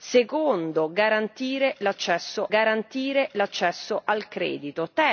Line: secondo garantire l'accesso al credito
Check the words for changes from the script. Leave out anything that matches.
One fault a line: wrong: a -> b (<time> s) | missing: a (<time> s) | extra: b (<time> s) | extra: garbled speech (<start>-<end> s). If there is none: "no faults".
extra: garantire l'accesso (2.5 s)